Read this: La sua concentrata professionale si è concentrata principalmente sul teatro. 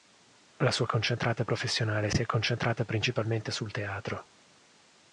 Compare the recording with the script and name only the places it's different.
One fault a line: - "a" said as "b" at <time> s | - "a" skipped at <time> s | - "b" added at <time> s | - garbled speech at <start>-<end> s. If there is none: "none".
none